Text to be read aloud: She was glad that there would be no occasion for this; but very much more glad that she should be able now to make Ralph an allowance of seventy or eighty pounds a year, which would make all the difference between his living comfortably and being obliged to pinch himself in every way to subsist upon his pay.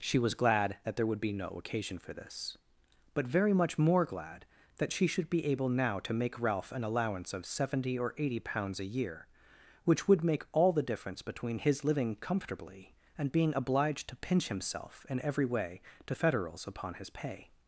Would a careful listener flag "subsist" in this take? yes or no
yes